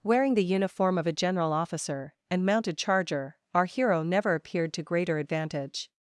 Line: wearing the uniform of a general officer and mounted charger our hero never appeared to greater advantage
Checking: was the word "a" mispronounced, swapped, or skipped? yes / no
no